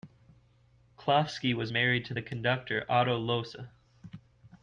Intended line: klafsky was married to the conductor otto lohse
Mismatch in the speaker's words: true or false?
false